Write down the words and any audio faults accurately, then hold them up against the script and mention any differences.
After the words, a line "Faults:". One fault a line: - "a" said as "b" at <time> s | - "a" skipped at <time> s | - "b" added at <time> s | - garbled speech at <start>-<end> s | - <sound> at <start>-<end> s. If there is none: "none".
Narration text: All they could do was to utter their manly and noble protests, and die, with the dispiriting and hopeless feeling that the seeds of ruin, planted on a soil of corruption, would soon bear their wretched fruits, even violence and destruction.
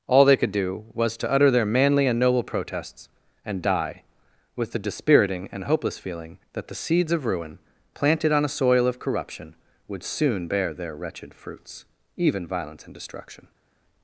All they could do was to utter their manly and noble protests, and die, with the dispiriting and hopeless feeling that the seeds of ruin, planted on a soil of corruption, would soon bear their wretched fruits, even violence and destruction.
Faults:
none